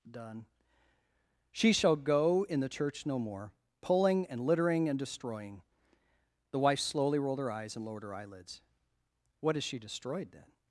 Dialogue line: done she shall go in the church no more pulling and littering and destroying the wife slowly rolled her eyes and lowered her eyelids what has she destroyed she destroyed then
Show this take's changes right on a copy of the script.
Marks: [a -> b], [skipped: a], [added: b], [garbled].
done she shall go in the church no more pulling and littering and destroying the wife slowly rolled her eyes and lowered her eyelids what has she destroyed [skipped: she destroyed] then